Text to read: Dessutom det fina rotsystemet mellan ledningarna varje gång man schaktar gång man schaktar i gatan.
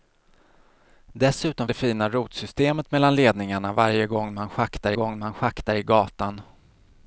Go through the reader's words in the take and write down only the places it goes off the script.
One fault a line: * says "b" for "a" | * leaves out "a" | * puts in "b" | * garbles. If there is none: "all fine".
all fine